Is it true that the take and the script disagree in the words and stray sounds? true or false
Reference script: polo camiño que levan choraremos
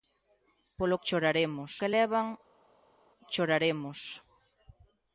true